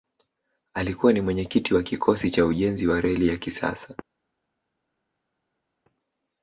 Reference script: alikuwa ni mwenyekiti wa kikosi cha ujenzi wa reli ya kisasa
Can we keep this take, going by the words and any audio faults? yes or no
yes